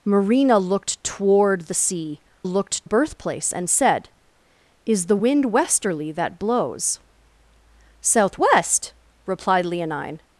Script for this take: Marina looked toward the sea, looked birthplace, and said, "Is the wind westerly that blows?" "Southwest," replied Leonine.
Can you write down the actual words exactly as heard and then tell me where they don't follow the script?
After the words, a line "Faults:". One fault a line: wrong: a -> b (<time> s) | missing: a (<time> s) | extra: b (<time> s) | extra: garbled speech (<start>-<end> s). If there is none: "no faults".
Marina looked toward the sea, looked birthplace, and said, "Is the wind westerly that blows?" "Southwest," replied Leonine.
Faults:
no faults